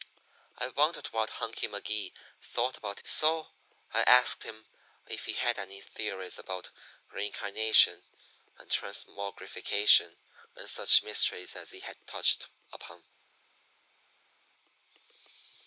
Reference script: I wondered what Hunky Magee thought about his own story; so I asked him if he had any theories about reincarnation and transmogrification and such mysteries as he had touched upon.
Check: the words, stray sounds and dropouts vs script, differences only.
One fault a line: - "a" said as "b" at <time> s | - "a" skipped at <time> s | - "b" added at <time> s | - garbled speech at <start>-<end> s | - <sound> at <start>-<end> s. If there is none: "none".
- "his own story" skipped at 3.0 s